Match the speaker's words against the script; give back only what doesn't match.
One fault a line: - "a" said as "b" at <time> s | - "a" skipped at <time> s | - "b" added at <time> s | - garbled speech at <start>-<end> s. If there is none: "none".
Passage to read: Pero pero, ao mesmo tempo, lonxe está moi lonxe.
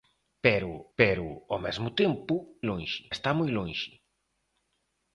none